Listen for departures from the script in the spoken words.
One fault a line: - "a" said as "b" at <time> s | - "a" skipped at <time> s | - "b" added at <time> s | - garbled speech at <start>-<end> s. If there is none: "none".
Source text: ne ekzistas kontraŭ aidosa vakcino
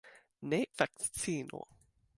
- "ekzistas kontraŭ aidosa" skipped at 0.6 s